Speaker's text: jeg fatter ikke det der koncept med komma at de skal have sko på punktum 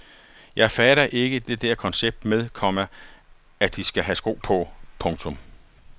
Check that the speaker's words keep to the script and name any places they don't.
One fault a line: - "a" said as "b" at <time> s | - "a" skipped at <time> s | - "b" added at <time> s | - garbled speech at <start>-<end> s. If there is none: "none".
none